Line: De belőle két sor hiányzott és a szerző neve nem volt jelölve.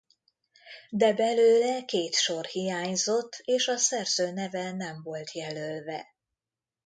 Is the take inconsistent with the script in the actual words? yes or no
no